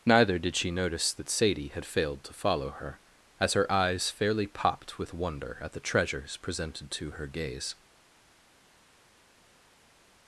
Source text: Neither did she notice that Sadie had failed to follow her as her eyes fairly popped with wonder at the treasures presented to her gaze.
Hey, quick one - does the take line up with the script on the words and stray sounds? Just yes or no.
yes